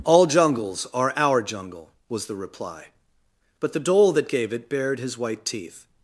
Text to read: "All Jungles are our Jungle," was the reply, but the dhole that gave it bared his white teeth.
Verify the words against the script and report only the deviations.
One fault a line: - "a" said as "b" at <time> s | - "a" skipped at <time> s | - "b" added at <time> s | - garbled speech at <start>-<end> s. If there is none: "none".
none